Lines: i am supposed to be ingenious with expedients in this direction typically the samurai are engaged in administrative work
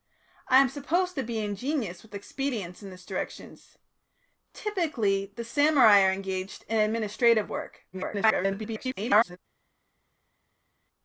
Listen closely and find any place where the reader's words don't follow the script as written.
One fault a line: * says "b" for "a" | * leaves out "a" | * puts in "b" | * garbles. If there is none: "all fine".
* garbles